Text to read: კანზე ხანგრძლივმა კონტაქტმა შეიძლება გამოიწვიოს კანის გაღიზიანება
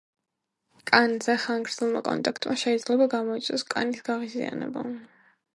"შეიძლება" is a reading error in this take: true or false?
false